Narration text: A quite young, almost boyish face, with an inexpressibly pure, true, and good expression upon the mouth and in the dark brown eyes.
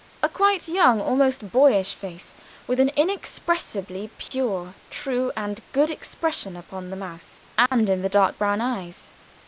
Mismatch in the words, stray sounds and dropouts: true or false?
true